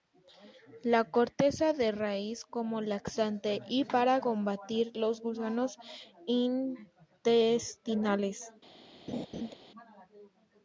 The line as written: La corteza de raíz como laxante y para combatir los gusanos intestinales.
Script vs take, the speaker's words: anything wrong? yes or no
no